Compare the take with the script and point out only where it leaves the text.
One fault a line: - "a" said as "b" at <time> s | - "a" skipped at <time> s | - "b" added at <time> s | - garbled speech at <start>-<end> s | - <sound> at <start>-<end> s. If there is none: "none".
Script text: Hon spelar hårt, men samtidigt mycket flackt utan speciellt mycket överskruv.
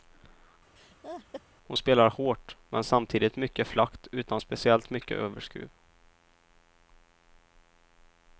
- laugh at 0.8-1.4 s